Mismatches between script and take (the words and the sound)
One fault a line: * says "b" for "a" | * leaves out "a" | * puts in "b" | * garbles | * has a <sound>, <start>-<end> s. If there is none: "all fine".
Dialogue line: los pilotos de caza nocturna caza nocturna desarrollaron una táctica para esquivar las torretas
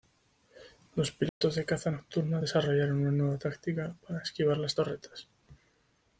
* has a dropout, 1.3-1.4 s
* leaves out "caza nocturna"
* puts in "nueva"